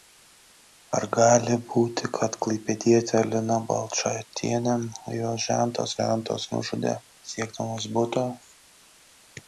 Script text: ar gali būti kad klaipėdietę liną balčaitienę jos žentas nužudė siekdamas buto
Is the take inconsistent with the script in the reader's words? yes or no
yes